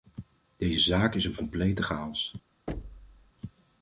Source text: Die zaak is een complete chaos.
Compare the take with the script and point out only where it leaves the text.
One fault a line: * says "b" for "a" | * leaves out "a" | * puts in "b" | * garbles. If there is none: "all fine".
* says "Deze" for "Die"